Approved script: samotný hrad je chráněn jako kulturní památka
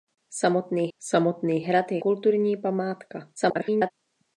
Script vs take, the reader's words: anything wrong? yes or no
yes